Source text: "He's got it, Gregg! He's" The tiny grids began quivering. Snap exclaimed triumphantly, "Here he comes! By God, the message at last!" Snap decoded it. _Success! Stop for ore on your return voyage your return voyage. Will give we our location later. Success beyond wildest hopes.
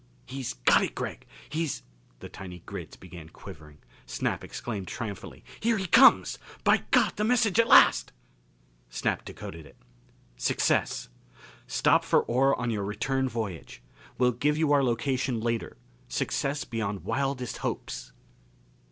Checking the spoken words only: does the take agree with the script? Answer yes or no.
no